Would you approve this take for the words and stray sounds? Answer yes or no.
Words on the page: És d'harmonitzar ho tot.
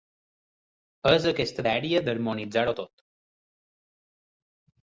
no